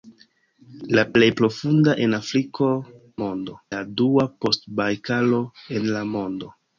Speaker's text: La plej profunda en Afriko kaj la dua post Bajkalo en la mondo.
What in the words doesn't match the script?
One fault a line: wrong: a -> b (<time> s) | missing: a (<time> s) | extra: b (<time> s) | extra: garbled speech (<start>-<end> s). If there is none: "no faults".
wrong: kaj -> mondo (3.2 s)